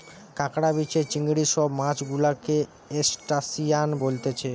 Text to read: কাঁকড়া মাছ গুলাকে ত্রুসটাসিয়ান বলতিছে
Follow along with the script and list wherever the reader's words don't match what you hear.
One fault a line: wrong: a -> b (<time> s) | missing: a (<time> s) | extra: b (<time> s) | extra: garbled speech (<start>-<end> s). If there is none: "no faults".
extra: বিছে চিংড়ি সব (0.7 s)